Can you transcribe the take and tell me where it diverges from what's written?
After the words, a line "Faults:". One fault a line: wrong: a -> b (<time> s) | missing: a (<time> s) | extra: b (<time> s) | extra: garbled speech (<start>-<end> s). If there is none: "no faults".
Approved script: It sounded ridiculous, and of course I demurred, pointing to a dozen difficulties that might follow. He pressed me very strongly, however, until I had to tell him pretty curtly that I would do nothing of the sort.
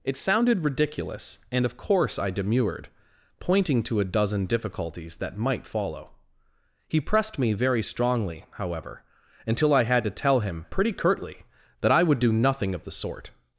It sounded ridiculous, and of course I demurred, pointing to a dozen difficulties that might follow. He pressed me very strongly, however, until I had to tell him pretty curtly that I would do nothing of the sort.
Faults:
no faults